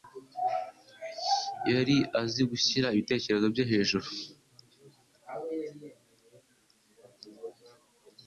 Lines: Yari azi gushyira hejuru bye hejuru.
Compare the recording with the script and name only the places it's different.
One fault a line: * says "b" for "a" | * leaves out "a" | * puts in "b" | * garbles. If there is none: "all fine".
* says "ibitekerezo" for "hejuru"